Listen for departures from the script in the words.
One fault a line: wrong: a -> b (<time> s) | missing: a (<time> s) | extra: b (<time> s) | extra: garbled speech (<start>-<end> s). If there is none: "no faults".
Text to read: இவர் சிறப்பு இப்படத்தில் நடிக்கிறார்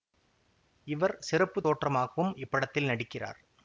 extra: தோற்றமாகவும் (1.7 s)